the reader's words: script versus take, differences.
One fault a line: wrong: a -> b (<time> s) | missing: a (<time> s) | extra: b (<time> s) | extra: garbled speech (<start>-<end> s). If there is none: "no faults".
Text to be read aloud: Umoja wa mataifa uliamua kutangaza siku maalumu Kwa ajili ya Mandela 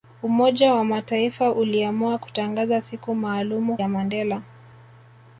missing: Kwa ajili (3.8 s)